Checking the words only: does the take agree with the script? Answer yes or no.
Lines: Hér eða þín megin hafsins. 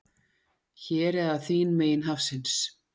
yes